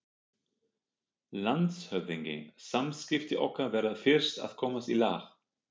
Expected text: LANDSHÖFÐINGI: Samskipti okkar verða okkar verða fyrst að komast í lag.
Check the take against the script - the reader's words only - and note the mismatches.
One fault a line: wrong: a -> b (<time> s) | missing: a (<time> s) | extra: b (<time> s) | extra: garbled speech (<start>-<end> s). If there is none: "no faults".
missing: okkar verða (4.0 s)